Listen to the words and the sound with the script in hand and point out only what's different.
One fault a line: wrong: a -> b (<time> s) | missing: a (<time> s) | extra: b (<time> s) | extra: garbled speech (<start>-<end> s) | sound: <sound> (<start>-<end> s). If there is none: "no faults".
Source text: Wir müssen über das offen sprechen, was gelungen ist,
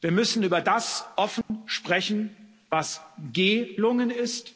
sound: dropout (1.4-1.5 s)